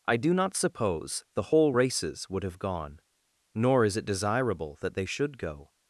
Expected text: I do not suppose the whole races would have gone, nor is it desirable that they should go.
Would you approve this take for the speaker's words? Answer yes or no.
yes